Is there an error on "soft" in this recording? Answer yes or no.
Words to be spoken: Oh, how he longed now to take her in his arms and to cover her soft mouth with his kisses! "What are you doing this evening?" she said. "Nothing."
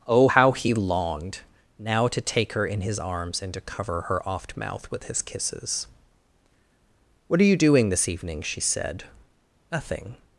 yes